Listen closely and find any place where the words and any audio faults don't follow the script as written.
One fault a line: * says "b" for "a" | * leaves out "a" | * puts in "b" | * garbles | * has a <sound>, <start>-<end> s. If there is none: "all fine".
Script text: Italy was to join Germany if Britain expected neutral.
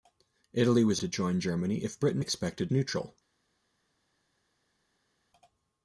all fine